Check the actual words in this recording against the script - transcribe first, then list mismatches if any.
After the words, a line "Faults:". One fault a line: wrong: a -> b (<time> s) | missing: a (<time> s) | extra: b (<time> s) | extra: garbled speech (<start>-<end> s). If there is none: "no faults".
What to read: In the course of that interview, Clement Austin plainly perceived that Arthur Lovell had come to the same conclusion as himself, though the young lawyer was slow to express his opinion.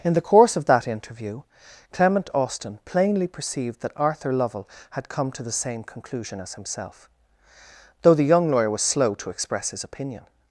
In the course of that interview, Clement Austin plainly perceived that Arthur Lovell had come to the same conclusion as himself, though the young lawyer was slow to express his opinion.
Faults:
no faults